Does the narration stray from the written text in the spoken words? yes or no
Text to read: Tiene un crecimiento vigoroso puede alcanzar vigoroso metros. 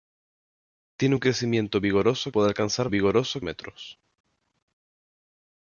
no